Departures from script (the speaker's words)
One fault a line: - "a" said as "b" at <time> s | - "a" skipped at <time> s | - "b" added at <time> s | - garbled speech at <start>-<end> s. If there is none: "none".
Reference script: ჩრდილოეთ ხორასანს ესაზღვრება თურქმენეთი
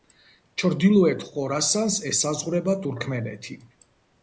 none